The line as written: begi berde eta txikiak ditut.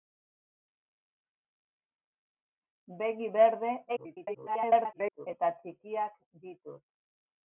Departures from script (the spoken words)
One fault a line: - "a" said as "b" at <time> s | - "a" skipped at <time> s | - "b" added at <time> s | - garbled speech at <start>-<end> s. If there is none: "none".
- garbled speech at 3.9-5.3 s